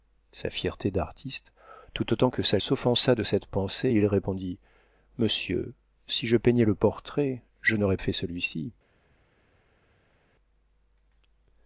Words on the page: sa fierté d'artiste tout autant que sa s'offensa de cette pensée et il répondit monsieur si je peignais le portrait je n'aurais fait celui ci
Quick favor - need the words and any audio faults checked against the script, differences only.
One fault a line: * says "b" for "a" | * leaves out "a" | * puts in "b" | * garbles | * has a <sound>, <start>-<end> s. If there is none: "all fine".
all fine